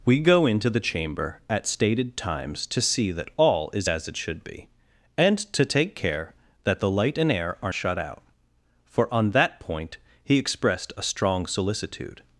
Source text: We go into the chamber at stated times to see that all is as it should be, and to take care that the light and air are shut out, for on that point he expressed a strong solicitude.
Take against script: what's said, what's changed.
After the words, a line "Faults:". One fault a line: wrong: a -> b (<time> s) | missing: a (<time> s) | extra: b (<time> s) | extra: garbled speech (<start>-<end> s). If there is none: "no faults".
We go into the chamber at stated times to see that all is as it should be, and to take care that the light and air are shut out, for on that point he expressed a strong solicitude.
Faults:
no faults